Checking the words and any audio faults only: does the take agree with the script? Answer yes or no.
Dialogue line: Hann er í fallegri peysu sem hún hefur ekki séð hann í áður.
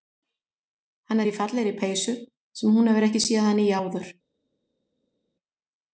yes